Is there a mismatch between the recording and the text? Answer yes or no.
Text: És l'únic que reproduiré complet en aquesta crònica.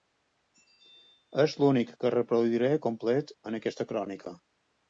no